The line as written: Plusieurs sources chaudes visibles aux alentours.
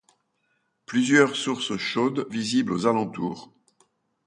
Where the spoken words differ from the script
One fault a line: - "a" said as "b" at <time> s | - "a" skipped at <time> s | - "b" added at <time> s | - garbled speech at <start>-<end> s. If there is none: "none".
none